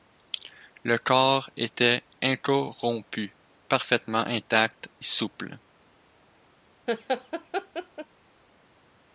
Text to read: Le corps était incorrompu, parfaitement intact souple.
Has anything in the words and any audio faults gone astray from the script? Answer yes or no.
yes